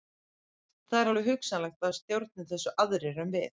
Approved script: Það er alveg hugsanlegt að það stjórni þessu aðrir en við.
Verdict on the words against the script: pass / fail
pass